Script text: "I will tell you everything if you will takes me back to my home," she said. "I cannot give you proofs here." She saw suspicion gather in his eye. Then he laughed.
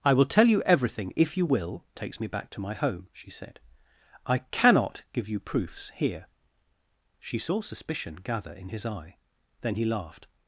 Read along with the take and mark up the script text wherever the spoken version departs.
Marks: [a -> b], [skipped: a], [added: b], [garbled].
"I will tell you everything if you will takes me back to my home," she said. "I cannot give you proofs here." She saw suspicion gather in his eye. Then he laughed.